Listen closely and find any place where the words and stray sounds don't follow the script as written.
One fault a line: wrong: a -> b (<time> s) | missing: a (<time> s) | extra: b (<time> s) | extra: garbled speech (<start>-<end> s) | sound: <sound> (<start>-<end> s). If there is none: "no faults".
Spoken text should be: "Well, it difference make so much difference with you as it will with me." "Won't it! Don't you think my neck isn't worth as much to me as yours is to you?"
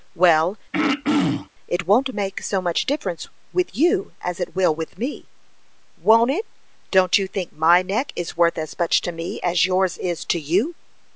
sound: throat clearing (0.7-1.5 s)
wrong: difference -> won't (1.9 s)
wrong: isn't -> is (8.1 s)